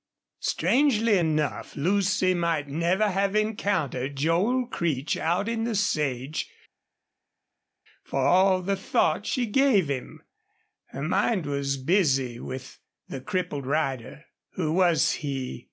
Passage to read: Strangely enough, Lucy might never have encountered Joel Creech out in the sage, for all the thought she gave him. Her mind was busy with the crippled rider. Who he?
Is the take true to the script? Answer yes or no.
no